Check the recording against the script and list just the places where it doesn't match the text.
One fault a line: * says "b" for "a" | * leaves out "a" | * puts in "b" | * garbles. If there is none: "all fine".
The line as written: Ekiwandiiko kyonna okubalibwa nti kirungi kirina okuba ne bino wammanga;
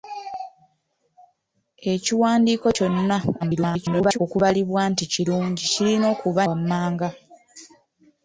* garbles
* leaves out "ne bino"